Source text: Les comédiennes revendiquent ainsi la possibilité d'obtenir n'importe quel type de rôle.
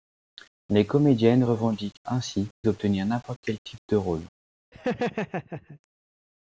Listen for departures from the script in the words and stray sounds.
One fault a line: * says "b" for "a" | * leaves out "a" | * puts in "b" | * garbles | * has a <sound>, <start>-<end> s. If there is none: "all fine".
* leaves out "la possibilité"
* has a laugh, 4.7-5.8 s